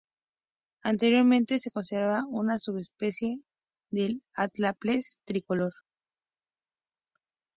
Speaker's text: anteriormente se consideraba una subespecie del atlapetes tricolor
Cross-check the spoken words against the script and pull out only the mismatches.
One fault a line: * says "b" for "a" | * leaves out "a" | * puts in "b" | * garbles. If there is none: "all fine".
all fine